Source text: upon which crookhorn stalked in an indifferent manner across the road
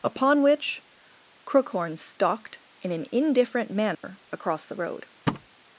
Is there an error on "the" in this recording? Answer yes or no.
no